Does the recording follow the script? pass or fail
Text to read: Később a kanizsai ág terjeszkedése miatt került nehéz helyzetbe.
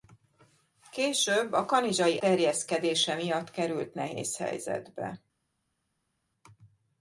fail